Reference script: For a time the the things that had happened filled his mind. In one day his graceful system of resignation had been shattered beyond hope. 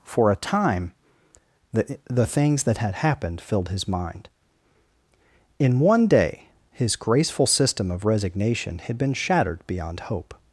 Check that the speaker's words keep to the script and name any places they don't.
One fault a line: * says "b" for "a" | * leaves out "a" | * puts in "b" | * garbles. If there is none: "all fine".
all fine